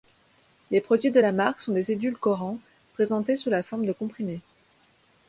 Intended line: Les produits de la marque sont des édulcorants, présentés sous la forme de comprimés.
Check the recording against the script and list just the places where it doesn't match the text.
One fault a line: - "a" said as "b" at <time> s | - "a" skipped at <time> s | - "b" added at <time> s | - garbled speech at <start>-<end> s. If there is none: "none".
none